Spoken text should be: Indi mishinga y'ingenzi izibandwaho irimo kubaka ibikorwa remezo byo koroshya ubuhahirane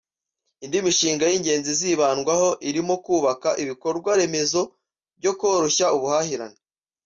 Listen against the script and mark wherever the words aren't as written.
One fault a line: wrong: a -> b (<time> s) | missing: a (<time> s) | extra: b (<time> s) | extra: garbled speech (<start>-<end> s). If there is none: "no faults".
no faults